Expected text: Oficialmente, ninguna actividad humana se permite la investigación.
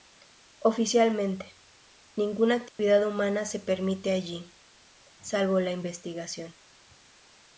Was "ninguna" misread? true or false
false